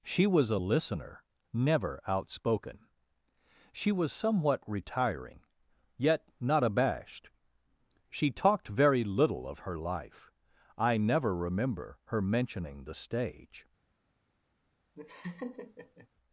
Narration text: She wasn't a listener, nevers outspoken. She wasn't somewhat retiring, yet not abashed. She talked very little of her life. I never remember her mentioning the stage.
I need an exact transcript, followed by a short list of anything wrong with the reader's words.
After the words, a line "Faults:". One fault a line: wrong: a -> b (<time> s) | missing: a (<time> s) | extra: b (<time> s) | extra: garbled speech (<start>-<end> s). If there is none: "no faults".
She was a listener, never outspoken. She was somewhat retiring, yet not abashed. She talked very little of her life. I never remember her mentioning the stage.
Faults:
wrong: wasn't -> was (0.2 s)
wrong: nevers -> never (1.5 s)
wrong: wasn't -> was (3.9 s)